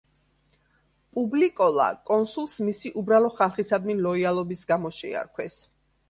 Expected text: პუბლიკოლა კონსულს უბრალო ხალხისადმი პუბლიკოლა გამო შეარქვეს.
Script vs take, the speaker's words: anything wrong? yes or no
yes